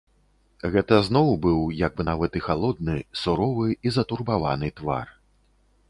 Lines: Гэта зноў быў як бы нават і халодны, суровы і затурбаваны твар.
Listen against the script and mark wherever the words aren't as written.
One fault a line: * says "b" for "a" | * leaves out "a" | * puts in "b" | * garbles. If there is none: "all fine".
all fine